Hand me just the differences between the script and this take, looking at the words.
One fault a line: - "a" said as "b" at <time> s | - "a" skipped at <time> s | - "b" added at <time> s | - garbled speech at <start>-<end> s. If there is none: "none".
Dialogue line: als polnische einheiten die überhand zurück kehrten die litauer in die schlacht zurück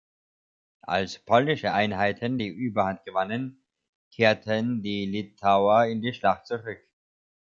- "zurück" said as "gewannen" at 3.0 s